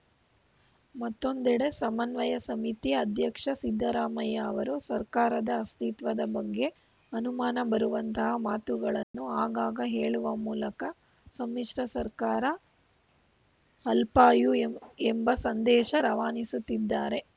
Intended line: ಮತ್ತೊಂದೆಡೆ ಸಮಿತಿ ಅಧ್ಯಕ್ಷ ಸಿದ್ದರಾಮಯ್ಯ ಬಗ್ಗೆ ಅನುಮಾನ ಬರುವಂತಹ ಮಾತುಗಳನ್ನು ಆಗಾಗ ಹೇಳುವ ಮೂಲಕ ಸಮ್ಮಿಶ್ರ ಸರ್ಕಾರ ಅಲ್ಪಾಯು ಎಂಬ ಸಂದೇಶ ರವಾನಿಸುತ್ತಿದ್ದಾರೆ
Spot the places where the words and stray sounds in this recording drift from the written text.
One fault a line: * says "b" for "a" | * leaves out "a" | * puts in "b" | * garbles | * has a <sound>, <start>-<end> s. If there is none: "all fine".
* puts in "ಸಮನ್ವಯ"
* puts in "ಅವರು ಸರ್ಕಾರದ ಅಸ್ತಿತ್ವದ"
* has a dropout, 9.0-9.1 s